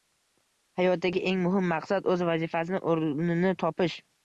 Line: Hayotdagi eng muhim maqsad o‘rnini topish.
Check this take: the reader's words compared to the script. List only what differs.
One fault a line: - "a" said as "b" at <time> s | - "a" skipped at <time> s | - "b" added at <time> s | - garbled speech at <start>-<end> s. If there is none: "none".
- "o‘z vazifasini" added at 2.1 s